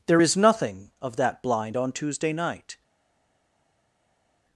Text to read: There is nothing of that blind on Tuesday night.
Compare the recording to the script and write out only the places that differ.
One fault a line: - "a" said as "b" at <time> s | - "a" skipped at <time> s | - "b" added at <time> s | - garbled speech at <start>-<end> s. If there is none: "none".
none